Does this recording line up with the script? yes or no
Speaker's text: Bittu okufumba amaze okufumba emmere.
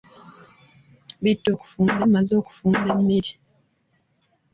yes